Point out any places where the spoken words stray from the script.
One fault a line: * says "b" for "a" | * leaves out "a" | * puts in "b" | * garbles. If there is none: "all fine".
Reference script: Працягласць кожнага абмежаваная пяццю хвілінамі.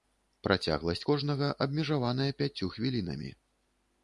all fine